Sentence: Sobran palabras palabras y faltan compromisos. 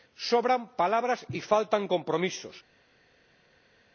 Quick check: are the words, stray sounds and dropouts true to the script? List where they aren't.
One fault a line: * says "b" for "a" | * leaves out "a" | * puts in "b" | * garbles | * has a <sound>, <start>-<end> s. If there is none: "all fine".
* leaves out "palabras"